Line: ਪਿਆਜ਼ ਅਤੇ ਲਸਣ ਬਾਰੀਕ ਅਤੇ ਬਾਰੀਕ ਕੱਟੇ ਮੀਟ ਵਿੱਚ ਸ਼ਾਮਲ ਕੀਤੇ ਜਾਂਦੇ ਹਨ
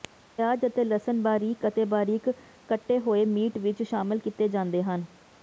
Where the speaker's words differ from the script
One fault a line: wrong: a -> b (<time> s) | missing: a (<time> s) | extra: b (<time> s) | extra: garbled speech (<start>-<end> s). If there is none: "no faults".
extra: ਹੋਏ (3.0 s)